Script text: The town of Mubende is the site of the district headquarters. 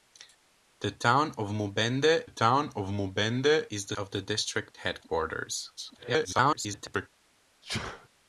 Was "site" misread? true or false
true